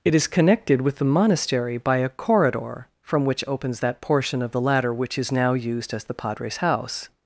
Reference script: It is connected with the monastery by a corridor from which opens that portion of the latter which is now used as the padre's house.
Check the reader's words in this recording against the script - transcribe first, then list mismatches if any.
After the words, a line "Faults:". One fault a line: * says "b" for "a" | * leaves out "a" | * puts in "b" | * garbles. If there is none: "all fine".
It is connected with the monastery by a corridor from which opens that portion of the latter which is now used as the padre's house.
Faults:
all fine